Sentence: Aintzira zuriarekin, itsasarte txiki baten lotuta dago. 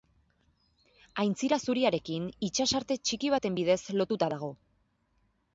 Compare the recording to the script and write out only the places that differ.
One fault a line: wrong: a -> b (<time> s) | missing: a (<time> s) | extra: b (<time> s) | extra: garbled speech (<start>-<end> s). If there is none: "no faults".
extra: bidez (3.6 s)